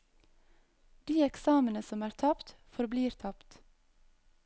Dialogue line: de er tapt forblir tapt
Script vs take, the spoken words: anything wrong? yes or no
yes